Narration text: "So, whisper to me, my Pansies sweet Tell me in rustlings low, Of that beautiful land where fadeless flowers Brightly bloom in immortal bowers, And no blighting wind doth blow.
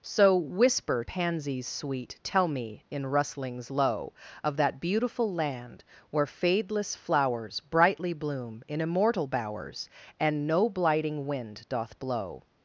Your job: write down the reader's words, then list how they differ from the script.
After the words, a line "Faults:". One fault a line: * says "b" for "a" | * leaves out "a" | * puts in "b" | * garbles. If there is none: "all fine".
"So, whisper Pansies sweet Tell me in rustlings low, Of that beautiful land where fadeless flowers Brightly bloom in immortal bowers, And no blighting wind doth blow.
Faults:
* leaves out "to me my"